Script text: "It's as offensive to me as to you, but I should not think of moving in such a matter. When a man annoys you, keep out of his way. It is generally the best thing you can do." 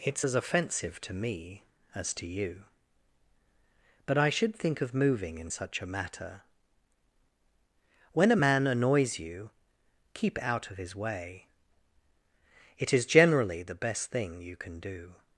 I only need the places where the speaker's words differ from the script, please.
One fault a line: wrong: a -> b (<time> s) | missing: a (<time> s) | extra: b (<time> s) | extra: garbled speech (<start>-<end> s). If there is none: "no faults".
missing: not (4.5 s)